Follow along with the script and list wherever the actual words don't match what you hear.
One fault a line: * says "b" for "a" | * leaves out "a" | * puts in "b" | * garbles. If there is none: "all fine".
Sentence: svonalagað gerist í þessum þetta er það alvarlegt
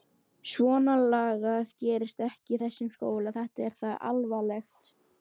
* puts in "ekki"
* puts in "skóla"